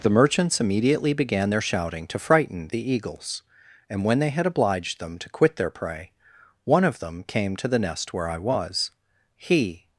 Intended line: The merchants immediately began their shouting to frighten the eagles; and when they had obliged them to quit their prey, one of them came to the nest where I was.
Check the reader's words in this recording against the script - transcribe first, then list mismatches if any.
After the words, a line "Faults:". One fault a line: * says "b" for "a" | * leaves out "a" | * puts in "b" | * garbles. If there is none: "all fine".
The merchants immediately began their shouting to frighten the eagles; and when they had obliged them to quit their prey, one of them came to the nest where I was. He
Faults:
* puts in "He"